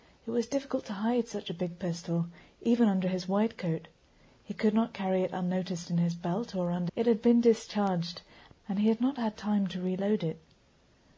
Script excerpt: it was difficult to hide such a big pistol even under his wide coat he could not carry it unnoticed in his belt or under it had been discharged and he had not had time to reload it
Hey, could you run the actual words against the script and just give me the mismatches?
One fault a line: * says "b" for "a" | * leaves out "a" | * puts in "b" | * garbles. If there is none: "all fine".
all fine